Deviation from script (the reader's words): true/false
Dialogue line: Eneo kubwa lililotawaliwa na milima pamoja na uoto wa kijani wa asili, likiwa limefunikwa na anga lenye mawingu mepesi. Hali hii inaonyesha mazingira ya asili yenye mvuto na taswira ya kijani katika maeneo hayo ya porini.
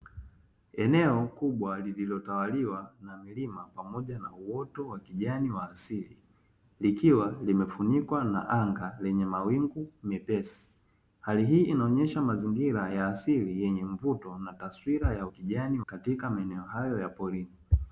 false